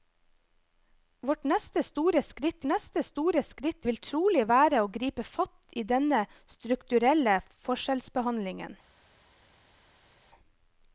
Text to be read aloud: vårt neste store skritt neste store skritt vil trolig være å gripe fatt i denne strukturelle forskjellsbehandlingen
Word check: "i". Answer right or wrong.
right